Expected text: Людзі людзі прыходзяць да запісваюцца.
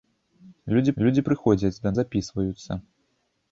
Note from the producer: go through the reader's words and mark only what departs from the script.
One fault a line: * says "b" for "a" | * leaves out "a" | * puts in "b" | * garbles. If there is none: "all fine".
all fine